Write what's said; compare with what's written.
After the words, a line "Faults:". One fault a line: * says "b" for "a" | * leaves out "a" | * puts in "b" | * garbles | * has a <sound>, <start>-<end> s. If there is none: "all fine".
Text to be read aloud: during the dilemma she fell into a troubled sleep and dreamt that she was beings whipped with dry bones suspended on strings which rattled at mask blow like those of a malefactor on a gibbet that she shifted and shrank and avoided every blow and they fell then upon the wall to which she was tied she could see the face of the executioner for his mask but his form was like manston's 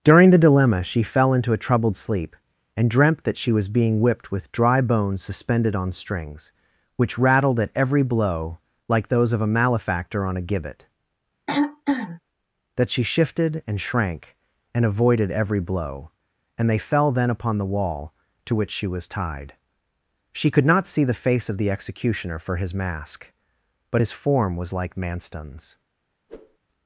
during the dilemma she fell into a troubled sleep and dreamt that she was being whipped with dry bones suspended on strings which rattled at every blow like those of a malefactor on a gibbet that she shifted and shrank and avoided every blow and they fell then upon the wall to which she was tied she could not see the face of the executioner for his mask but his form was like manston's
Faults:
* says "being" for "beings"
* says "every" for "mask"
* has a throat clearing, 11.5-12.2 s
* puts in "not"
* has a whoosh, 26.3-26.6 s